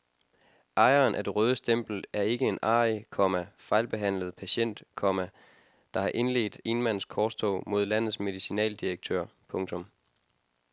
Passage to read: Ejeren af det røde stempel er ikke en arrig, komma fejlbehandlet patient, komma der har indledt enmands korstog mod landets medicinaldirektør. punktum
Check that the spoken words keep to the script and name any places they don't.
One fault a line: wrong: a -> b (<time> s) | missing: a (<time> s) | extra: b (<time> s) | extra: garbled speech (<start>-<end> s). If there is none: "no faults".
no faults